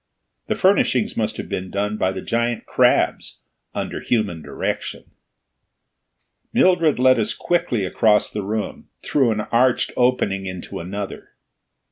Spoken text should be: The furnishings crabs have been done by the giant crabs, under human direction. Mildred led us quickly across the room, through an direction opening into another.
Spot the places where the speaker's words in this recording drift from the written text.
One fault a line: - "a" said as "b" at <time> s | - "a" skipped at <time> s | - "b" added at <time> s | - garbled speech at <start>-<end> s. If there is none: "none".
- "crabs" said as "must" at 1.1 s
- "direction" said as "arched" at 9.5 s